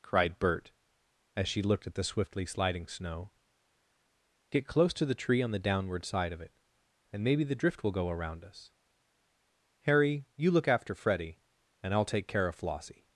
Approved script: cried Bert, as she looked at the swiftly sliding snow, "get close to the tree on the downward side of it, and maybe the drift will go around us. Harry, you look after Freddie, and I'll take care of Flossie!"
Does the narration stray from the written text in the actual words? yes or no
no